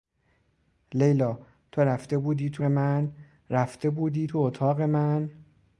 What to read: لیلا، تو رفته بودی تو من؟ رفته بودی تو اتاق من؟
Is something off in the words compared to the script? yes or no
no